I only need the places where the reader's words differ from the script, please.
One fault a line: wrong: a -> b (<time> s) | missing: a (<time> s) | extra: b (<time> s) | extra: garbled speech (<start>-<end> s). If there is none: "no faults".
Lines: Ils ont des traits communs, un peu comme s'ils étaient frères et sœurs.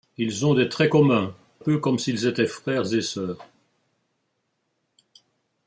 missing: un (1.3 s)